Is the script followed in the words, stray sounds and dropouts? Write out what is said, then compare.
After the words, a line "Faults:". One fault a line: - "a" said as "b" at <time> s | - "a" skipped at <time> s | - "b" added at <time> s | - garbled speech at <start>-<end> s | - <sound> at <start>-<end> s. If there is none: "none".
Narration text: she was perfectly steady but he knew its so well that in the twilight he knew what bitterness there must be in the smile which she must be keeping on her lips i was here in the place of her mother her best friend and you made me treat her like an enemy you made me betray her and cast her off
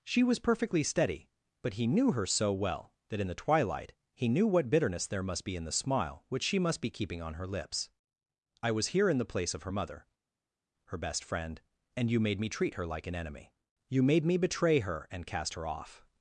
she was perfectly steady but he knew her so well that in the twilight he knew what bitterness there must be in the smile which she must be keeping on her lips i was here in the place of her mother her best friend and you made me treat her like an enemy you made me betray her and cast her off
Faults:
- "its" said as "her" at 2.1 s